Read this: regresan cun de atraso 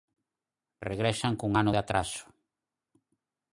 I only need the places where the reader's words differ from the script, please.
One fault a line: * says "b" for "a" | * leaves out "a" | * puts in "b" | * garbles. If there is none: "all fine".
* puts in "ano"